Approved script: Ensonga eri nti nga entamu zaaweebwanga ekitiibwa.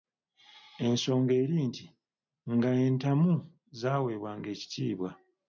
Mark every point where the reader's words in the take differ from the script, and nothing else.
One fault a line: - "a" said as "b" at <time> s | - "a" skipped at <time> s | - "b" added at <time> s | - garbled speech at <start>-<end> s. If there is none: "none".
none